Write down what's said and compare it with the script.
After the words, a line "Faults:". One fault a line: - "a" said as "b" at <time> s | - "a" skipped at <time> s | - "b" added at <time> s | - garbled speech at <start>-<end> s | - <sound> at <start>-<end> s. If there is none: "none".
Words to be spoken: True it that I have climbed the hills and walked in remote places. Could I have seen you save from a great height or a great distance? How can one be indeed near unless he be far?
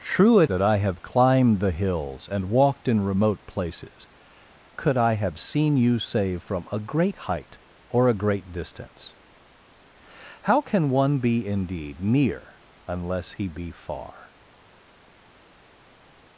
True it that I have climbed the hills and walked in remote places. Could I have seen you save from a great height or a great distance? How can one be indeed near unless he be far?
Faults:
none